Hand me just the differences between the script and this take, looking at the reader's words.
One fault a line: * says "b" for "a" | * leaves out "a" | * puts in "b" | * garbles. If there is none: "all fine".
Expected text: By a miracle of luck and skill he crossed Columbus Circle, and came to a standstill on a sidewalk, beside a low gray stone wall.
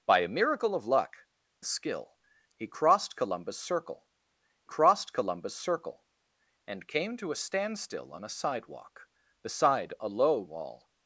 * leaves out "and"
* puts in "crossed Columbus Circle"
* leaves out "gray stone"